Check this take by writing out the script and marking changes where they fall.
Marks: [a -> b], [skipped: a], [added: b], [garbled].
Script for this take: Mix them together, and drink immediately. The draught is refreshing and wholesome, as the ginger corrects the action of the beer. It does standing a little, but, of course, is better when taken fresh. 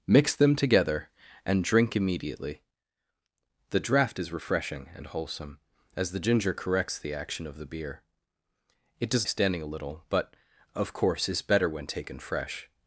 Mix them together, and drink immediately. The draught is refreshing and wholesome, as the ginger corrects the action of the beer. It does standing a little, but, of course, is better when taken fresh.